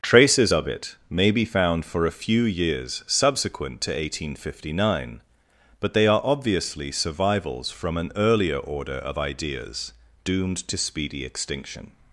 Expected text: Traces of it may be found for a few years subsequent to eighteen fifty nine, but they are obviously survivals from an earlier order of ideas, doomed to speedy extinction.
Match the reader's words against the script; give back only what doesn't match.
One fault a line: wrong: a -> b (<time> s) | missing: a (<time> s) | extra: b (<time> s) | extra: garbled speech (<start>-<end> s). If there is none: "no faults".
no faults